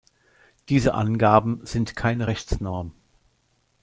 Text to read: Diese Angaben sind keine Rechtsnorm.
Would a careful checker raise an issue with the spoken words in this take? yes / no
no